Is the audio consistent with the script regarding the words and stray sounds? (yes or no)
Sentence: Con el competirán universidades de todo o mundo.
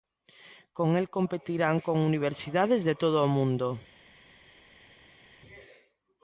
no